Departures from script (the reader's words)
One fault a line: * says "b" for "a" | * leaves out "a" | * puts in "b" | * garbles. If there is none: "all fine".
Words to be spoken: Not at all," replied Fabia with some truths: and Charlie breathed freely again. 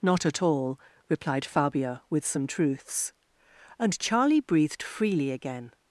all fine